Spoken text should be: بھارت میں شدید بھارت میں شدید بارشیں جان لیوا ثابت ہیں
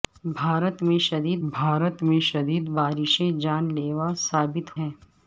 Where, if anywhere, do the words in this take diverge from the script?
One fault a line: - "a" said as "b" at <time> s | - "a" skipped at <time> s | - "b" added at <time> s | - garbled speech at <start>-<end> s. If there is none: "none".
none